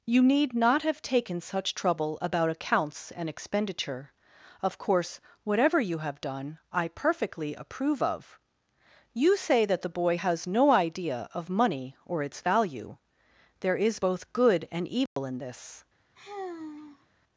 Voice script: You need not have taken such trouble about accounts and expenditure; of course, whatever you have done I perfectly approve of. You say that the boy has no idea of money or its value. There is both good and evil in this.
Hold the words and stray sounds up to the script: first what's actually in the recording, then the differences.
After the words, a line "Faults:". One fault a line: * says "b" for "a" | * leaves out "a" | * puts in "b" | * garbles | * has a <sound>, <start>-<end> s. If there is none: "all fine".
You need not have taken such trouble about accounts and expenditure; of course, whatever you have done I perfectly approve of. You say that the boy has no idea of money or its value. There is both good and evil in this.
Faults:
* has a dropout, 15.1-15.2 s
* has a sigh, 16.2-17.1 s